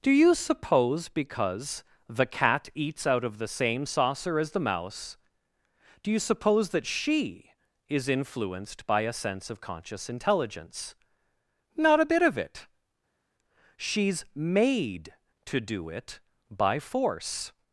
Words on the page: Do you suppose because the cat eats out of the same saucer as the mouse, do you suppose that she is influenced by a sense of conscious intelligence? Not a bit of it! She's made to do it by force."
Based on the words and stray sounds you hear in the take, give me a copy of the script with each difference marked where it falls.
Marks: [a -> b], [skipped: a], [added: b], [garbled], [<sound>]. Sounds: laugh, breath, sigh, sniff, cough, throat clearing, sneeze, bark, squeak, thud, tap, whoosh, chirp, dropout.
Do you suppose because the cat eats out of the same saucer as the mouse, do you suppose that she is influenced by a sense of conscious intelligence? Not a bit of it! She's made to do it by force."